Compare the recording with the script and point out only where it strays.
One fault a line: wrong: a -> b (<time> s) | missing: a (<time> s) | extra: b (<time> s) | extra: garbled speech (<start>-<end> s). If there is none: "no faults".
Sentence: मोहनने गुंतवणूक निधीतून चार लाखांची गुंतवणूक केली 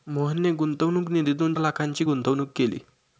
missing: चार (1.5 s)